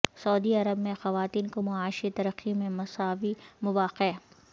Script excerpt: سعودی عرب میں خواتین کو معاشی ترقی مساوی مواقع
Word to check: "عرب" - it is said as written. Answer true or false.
true